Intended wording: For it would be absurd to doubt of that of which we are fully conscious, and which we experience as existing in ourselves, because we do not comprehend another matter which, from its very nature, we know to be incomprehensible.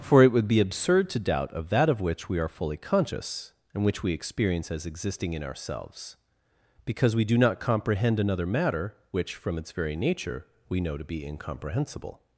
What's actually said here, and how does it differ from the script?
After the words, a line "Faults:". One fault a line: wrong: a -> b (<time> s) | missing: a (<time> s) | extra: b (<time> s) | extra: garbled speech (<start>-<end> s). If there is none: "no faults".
For it would be absurd to doubt of that of which we are fully conscious, and which we experience as existing in ourselves, because we do not comprehend another matter which, from its very nature, we know to be incomprehensible.
Faults:
no faults